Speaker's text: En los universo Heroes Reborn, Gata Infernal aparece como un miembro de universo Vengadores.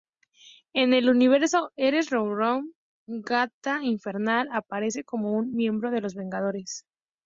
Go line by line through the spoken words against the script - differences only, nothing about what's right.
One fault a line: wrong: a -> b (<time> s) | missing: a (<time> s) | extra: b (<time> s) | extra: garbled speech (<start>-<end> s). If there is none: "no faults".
wrong: los -> el (0.9 s)
wrong: universo -> los (6.0 s)